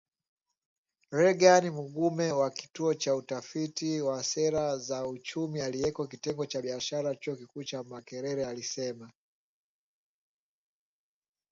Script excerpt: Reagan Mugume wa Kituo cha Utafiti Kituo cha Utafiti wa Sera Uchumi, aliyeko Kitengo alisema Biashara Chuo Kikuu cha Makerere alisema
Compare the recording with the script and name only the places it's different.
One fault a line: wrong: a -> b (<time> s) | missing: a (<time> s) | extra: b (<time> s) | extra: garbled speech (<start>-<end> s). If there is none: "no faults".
missing: Kituo cha Utafiti (4.0 s)
extra: za (4.8 s)
wrong: alisema -> cha (6.4 s)